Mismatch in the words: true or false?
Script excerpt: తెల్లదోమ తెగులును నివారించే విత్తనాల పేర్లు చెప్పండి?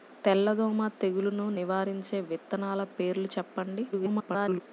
true